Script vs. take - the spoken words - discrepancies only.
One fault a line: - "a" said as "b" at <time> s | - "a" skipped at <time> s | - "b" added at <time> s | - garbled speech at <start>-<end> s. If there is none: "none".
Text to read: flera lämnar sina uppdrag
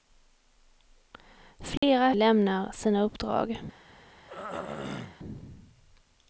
none